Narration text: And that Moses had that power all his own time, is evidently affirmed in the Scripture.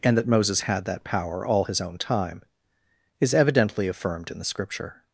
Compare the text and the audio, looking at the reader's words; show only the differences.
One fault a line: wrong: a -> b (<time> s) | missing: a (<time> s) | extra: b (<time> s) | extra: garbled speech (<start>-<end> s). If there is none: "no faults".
no faults